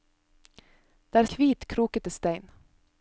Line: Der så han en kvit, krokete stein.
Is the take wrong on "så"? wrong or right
wrong